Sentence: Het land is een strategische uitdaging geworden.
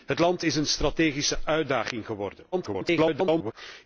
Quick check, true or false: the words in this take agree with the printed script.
false